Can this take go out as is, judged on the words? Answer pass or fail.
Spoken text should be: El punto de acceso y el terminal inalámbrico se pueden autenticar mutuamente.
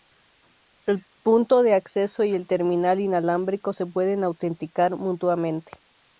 pass